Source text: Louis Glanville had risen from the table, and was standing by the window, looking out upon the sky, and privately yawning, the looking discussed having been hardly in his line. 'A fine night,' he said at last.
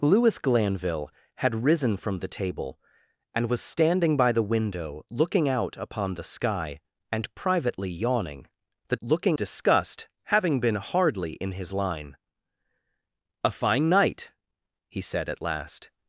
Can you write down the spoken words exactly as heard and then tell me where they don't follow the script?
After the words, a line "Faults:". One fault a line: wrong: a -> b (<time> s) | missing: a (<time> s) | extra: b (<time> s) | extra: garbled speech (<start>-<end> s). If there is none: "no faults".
Louis Glanville had risen from the table, and was standing by the window, looking out upon the sky, and privately yawning, the looking discussed having been hardly in his line. 'A fine night,' he said at last.
Faults:
no faults